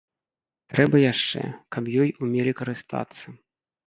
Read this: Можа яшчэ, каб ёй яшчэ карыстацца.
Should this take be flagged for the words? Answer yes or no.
yes